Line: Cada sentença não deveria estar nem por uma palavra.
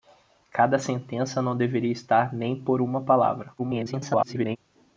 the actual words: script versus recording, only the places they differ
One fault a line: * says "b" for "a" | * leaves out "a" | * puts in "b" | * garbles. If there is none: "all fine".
* garbles